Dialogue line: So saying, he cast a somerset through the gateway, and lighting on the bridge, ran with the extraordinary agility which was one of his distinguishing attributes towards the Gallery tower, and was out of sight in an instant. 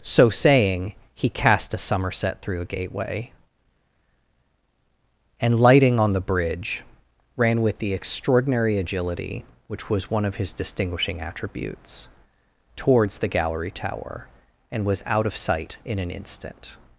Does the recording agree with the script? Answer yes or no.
no